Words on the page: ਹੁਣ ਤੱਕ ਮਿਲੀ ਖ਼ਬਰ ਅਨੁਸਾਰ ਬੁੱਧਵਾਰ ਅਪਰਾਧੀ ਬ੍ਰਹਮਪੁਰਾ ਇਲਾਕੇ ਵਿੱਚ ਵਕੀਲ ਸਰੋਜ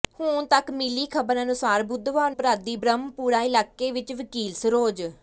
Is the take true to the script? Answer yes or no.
yes